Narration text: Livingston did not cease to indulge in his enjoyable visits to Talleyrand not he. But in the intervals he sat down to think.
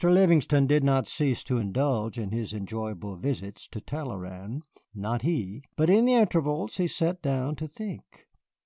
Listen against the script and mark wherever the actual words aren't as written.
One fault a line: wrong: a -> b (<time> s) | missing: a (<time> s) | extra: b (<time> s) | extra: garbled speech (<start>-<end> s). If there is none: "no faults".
no faults